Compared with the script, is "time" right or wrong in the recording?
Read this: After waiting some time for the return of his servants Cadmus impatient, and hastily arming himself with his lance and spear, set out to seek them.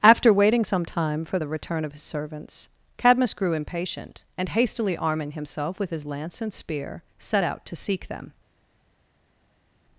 right